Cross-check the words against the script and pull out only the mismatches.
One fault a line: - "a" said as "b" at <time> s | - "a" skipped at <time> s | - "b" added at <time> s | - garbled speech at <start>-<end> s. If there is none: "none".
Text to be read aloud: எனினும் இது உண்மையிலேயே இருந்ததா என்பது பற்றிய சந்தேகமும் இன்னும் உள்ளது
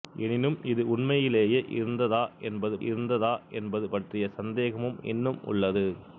- "இருந்ததா என்பது" added at 2.9 s